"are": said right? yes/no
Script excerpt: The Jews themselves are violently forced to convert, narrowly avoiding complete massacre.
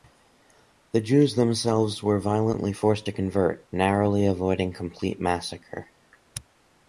no